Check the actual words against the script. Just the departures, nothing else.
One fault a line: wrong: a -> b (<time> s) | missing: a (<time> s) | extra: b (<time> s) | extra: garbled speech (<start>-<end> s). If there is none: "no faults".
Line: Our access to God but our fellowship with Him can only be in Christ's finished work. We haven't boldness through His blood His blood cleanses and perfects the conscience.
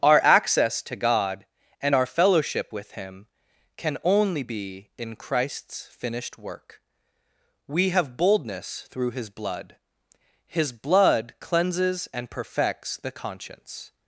wrong: but -> and (1.8 s)
wrong: haven't -> have (7.9 s)